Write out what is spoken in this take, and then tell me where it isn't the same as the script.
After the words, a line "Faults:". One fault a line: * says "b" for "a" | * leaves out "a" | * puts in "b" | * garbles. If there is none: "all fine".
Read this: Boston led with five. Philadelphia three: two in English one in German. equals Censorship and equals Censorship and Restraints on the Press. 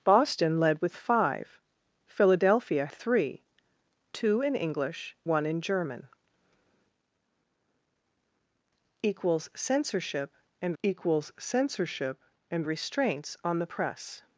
Boston led with five. Philadelphia three: two in English one in German. equals Censorship and equals Censorship and Restraints on the Press.
Faults:
all fine